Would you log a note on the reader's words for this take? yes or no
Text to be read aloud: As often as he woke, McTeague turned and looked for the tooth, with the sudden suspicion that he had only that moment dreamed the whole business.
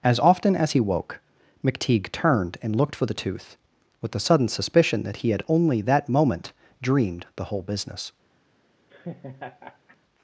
no